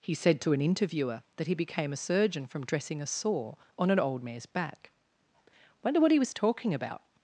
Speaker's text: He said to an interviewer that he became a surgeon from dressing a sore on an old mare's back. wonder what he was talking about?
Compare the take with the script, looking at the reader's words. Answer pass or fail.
pass